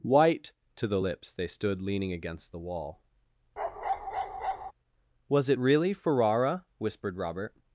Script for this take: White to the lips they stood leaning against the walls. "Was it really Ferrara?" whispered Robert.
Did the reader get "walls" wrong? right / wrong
wrong